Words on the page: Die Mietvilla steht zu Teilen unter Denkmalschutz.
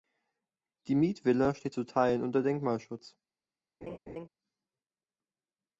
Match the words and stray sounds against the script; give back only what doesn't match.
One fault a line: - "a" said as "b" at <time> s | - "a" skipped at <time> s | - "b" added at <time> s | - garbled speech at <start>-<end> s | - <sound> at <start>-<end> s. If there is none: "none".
- laugh at 3.8-4.3 s